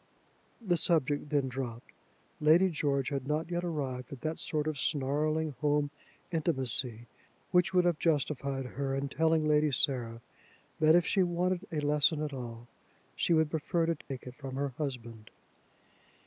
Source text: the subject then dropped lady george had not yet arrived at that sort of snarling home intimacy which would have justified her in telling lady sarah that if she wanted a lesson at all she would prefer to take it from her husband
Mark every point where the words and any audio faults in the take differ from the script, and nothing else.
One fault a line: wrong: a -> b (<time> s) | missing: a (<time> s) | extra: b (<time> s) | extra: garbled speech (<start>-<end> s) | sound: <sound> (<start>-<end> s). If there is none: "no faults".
sound: dropout (14.0-14.1 s)